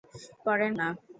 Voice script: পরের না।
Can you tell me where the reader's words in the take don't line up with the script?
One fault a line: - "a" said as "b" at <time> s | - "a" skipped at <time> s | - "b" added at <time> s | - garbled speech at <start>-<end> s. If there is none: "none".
none